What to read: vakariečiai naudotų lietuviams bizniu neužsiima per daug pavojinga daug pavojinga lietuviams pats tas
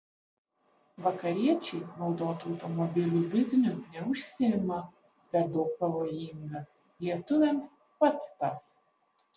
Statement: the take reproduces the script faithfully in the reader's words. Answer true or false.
false